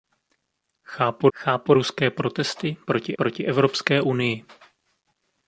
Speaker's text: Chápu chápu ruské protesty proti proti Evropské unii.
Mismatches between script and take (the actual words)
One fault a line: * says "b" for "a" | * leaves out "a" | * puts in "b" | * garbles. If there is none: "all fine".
all fine